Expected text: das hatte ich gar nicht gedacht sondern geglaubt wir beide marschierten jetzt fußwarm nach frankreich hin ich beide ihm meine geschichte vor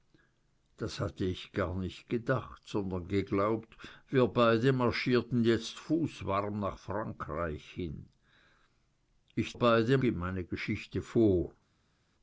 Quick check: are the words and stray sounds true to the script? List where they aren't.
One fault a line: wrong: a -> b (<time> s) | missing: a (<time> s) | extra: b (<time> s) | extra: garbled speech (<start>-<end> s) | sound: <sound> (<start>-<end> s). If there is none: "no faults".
no faults